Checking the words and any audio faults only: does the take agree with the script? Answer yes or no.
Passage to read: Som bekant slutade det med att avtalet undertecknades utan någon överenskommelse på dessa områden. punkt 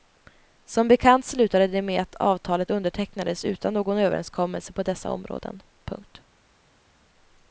yes